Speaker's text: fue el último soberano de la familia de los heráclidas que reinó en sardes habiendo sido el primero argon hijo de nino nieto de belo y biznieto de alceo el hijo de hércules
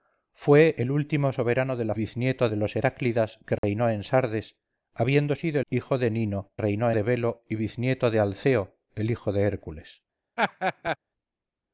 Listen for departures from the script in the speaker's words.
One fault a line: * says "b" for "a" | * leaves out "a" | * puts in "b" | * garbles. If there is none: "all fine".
* says "biznieto" for "familia"
* leaves out "el primero argon"
* says "reinó" for "nieto"